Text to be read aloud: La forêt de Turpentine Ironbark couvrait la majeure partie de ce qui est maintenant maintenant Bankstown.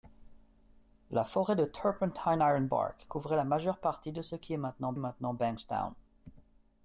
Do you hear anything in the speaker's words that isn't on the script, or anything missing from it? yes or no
no